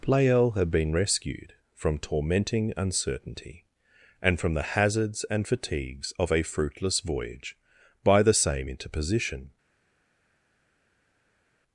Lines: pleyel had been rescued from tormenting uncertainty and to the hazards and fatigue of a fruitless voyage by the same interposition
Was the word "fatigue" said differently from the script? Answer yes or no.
yes